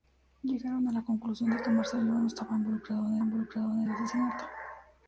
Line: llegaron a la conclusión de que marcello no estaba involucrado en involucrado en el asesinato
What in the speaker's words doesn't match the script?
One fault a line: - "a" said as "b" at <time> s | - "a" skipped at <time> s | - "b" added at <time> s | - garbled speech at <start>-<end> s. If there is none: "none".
none